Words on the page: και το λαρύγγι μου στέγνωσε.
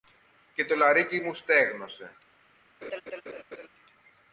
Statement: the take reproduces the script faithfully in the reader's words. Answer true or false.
true